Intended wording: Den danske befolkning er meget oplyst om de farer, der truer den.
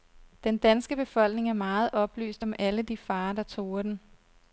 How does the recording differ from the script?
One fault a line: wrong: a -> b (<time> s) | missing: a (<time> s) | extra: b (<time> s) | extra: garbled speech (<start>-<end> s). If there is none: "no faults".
extra: alle (2.6 s)